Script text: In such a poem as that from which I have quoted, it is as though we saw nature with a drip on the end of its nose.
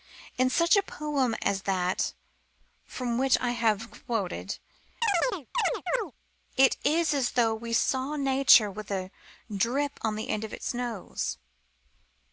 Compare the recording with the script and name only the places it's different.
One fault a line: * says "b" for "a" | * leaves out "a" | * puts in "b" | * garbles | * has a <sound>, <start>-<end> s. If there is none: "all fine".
* has a chirp, 5.0-6.1 s